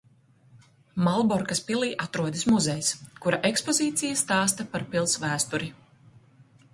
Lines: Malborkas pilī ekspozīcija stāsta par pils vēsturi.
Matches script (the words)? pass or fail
fail